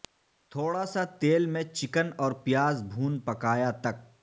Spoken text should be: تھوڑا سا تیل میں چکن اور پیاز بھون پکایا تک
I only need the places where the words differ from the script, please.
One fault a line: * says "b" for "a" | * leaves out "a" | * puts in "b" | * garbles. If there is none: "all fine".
all fine